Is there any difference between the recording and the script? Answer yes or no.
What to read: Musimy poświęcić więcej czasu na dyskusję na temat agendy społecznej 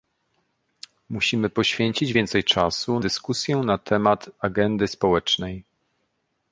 yes